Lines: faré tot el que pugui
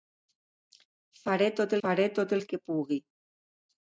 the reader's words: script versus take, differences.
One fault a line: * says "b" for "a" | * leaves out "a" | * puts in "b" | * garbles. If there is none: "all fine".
* puts in "faré tot"